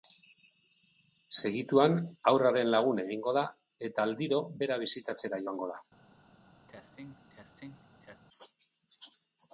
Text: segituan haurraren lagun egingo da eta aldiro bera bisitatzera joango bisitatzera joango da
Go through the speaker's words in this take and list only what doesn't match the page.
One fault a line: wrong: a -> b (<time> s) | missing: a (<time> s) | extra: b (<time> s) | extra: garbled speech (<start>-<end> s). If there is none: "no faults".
missing: bisitatzera joango (5.7 s)